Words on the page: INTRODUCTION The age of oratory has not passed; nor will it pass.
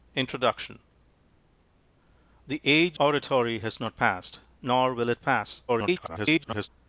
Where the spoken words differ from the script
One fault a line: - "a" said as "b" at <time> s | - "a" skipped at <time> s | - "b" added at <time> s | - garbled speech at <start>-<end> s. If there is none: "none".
- "of" skipped at 3.0 s
- garbled speech at 5.7-6.7 s